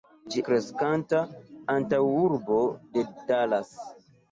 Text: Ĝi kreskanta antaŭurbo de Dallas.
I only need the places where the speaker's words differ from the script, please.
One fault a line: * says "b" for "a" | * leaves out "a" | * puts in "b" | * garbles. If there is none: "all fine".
all fine